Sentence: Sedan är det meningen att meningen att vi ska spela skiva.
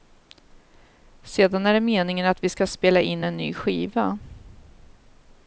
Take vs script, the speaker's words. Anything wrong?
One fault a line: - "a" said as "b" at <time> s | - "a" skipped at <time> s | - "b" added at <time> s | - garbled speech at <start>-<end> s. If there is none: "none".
- "meningen att" skipped at 2.4 s
- "in en ny" added at 3.0 s